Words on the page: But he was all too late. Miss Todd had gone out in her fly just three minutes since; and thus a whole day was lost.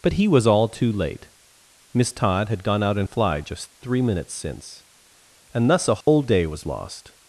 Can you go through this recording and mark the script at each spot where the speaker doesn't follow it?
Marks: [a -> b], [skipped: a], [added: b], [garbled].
But he was all too late. Miss Todd had gone out in [skipped: her] fly just three minutes since; and thus a whole day was lost.